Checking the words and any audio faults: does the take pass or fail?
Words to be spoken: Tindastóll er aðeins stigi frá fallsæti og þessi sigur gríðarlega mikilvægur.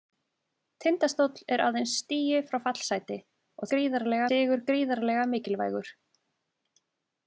fail